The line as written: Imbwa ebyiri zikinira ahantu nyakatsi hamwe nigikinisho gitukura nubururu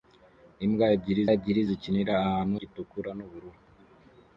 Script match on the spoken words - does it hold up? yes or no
no